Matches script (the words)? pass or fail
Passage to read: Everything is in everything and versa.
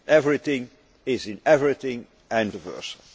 pass